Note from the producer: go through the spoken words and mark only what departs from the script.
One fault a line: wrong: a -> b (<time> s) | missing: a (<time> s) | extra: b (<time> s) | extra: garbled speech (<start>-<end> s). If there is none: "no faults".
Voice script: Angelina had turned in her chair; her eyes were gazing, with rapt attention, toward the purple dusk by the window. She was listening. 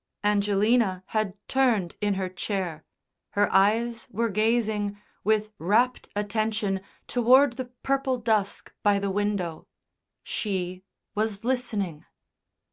no faults